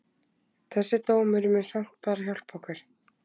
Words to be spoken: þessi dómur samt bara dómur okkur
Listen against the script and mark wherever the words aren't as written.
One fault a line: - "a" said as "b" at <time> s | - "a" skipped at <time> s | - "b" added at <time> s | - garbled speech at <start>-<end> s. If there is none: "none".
- "mun" added at 1.5 s
- "dómur" said as "hjálpa" at 2.3 s